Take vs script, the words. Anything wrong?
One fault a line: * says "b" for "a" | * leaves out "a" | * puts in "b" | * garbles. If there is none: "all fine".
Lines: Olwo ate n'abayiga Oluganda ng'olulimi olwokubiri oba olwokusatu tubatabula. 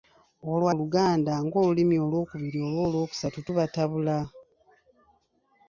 * leaves out "ate n'abayiga"